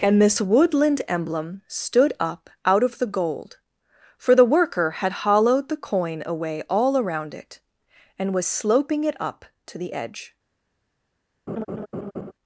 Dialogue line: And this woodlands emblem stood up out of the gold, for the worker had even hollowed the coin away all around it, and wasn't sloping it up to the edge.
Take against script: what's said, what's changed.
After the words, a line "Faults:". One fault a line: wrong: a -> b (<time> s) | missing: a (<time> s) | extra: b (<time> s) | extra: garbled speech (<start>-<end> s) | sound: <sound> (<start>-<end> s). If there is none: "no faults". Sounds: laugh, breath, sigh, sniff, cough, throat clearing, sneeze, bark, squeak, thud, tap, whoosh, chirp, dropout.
And this woodland emblem stood up out of the gold, for the worker had hollowed the coin away all around it, and was sloping it up to the edge.
Faults:
wrong: woodlands -> woodland (0.4 s)
missing: even (5.2 s)
wrong: wasn't -> was (8.3 s)
sound: laugh (11.5-12.3 s)